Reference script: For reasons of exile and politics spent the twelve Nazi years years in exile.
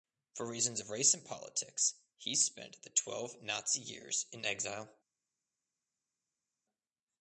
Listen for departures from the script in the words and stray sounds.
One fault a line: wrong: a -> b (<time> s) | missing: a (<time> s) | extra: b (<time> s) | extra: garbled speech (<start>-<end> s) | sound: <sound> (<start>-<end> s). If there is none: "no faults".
wrong: exile -> race (0.9 s)
extra: he (2.2 s)
missing: years (4.3 s)